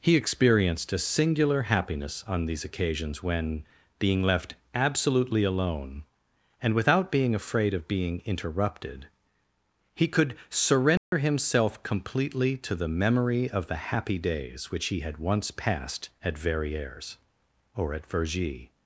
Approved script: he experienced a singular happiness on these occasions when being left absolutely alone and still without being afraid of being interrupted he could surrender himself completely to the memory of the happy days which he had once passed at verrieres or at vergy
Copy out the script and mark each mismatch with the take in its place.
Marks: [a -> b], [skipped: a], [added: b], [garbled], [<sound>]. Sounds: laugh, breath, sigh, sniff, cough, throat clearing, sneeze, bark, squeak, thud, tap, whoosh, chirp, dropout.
he experienced a singular happiness on these occasions when being left absolutely alone and [skipped: still] without being afraid of being interrupted he could surrender [dropout] himself completely to the memory of the happy days which he had once passed at verrieres or at vergy